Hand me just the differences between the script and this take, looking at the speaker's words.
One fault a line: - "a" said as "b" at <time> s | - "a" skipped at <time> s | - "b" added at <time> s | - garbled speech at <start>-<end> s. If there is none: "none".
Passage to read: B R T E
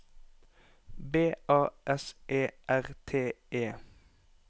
- "A S E" added at 1.5 s